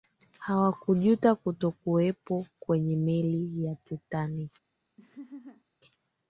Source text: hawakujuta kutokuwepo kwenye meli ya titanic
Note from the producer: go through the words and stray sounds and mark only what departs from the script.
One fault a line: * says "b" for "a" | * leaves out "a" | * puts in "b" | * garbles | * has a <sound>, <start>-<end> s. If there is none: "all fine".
* has a laugh, 5.0-5.6 s